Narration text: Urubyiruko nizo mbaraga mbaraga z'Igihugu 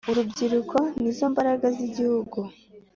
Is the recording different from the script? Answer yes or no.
yes